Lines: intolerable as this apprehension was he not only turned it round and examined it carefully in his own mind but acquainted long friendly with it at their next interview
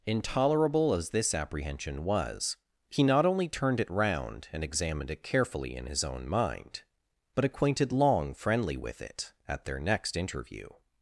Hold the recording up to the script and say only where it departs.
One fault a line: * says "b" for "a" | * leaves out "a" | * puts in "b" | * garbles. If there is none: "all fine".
all fine